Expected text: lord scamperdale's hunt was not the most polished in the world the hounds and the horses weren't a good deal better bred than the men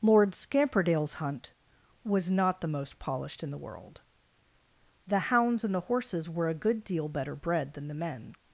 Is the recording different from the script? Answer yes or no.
yes